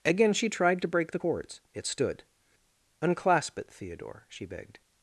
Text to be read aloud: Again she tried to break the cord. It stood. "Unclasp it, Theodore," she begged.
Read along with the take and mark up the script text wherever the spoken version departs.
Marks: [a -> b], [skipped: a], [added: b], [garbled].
Again she tried to break the [cord. -> cords] It stood. "Unclasp it, Theodore," she begged.